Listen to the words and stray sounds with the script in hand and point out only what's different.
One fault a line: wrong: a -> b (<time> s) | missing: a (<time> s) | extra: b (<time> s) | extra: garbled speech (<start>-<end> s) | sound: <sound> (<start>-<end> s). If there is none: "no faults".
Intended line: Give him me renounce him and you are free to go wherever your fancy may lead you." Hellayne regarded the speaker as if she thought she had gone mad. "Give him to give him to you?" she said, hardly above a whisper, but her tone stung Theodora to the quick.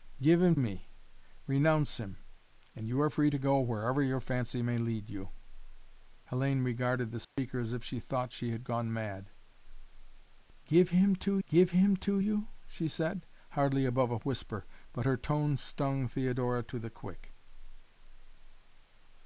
sound: dropout (7.2-7.4 s)